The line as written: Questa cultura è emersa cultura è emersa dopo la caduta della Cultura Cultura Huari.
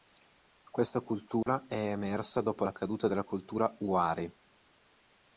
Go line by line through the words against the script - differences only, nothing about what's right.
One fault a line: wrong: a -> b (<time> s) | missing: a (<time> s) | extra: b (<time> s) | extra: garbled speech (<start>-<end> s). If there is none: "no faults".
missing: cultura è emersa (2.4 s)
missing: Cultura (3.8 s)